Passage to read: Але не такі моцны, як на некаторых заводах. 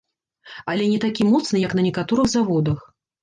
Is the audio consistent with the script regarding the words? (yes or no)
yes